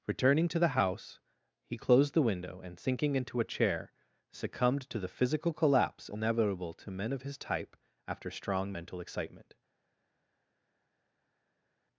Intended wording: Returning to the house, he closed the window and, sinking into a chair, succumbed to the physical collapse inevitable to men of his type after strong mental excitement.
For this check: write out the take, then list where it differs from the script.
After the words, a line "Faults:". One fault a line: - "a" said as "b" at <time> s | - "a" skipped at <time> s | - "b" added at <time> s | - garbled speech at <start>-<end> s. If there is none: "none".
Returning to the house, he closed the window and, sinking into a chair, succumbed to the physical collapse inevitable to men of his type after strong mental excitement.
Faults:
none